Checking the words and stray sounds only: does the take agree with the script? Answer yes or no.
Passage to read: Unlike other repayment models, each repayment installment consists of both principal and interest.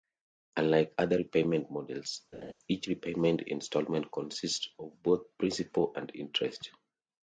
no